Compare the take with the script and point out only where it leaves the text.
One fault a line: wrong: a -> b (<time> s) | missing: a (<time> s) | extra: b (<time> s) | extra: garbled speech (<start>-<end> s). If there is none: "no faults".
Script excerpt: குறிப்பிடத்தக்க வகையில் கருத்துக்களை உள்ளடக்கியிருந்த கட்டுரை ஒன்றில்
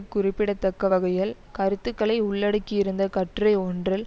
no faults